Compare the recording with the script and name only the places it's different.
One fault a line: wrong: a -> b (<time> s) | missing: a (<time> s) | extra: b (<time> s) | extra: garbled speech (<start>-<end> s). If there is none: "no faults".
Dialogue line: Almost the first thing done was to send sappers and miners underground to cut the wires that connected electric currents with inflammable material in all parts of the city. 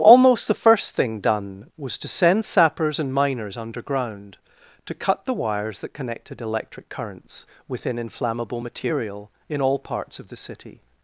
wrong: with -> within (7.7 s)